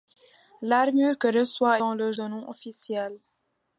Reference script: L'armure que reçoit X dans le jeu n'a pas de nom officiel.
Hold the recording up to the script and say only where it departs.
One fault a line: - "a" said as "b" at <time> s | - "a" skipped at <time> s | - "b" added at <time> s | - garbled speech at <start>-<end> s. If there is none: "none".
- "X" skipped at 1.8 s
- "jeu n'a pas" skipped at 2.1 s